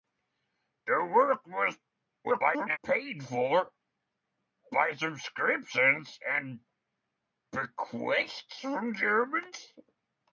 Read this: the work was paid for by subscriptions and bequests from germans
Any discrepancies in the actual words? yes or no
yes